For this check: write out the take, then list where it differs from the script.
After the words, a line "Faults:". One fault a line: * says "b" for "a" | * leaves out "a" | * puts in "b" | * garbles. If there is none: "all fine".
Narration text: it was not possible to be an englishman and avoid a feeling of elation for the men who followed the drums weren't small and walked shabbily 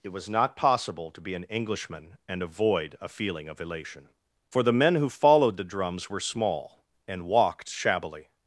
it was not possible to be an englishman and avoid a feeling of elation for the men who followed the drums were small and walked shabbily
Faults:
* says "were" for "weren't"